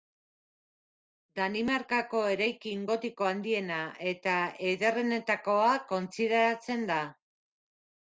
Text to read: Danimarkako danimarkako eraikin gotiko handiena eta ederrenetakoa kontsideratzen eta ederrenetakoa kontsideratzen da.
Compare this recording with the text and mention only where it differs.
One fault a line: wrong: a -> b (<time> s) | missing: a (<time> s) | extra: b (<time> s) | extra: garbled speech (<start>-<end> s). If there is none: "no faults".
missing: danimarkako (2.2 s)
missing: eta ederrenetakoa kontsideratzen (6.9 s)